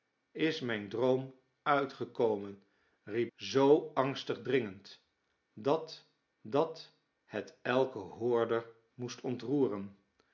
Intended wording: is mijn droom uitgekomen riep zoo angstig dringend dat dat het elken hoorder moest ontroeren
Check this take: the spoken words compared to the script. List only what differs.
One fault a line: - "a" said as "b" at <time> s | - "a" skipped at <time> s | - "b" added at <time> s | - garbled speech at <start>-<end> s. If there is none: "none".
none